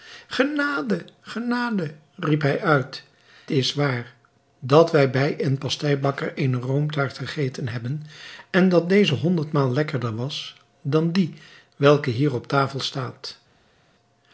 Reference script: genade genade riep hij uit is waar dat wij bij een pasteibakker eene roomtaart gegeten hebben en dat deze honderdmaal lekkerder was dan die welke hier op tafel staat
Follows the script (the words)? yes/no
yes